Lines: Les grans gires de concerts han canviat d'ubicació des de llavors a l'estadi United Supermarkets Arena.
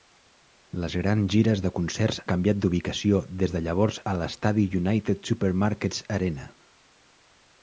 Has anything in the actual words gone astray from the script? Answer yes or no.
yes